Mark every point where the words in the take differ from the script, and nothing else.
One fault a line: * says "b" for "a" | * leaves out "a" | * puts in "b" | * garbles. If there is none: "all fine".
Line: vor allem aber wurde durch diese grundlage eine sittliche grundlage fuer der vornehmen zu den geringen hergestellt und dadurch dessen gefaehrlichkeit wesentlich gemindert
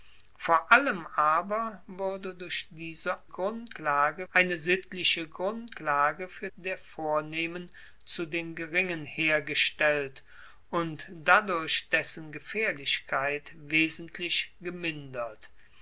all fine